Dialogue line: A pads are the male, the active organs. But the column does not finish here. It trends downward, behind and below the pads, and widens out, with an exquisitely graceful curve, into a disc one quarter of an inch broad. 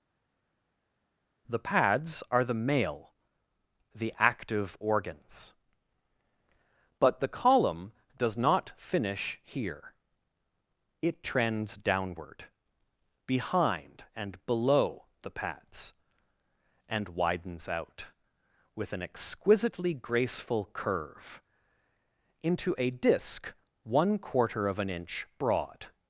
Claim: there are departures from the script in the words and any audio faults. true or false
true